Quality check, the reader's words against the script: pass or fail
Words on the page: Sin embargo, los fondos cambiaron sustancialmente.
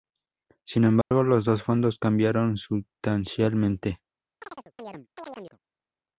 fail